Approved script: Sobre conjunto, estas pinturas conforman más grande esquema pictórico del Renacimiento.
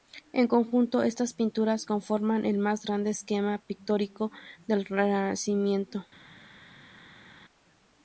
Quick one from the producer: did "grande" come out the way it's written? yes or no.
yes